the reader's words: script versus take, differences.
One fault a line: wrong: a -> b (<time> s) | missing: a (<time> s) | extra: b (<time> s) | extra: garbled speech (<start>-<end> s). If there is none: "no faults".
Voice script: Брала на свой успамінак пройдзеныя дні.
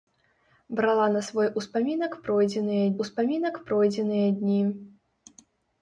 extra: успамінак пройдзеныя (3.1 s)